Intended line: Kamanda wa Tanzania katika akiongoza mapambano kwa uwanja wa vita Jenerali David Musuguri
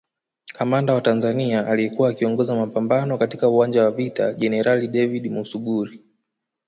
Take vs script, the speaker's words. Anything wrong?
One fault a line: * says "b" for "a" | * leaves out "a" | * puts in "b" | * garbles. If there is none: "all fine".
* says "aliyekuwa" for "katika"
* says "katika" for "kwa"